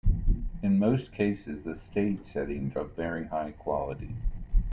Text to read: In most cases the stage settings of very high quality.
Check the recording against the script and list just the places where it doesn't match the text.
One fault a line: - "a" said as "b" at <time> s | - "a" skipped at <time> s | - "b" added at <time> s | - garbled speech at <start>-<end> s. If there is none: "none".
none